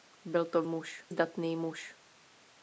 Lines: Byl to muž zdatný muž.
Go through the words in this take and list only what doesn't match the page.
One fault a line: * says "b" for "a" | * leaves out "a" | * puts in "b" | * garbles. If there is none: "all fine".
all fine